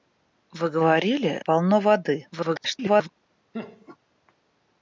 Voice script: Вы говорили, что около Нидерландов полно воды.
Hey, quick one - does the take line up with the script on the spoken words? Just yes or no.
no